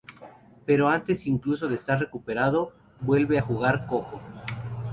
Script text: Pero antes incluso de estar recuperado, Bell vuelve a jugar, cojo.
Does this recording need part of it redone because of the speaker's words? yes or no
yes